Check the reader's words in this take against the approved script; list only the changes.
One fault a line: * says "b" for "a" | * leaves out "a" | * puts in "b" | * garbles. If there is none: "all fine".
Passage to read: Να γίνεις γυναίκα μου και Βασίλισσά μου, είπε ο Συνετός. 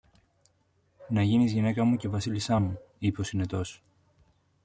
all fine